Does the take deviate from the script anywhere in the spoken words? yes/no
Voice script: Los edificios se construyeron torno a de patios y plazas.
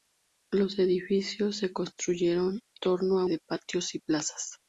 no